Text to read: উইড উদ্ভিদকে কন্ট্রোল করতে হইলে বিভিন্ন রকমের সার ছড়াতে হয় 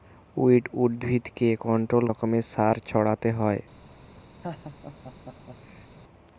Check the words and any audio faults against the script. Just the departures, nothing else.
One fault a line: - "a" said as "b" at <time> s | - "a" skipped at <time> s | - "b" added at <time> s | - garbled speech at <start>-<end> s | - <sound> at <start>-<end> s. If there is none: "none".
- "করতে হইলে বিভিন্ন" skipped at 2.0 s
- laugh at 4.4-5.9 s